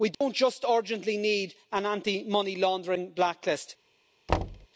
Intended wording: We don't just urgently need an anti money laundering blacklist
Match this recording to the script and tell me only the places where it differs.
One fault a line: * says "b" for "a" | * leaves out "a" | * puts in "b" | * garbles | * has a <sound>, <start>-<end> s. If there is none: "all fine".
* has a dropout, 0.1-0.2 s
* has a thud, 4.3-4.7 s